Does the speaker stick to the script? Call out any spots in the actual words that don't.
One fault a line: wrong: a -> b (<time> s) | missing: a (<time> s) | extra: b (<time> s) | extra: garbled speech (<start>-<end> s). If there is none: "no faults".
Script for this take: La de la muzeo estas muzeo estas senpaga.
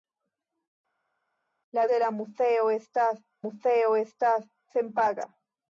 no faults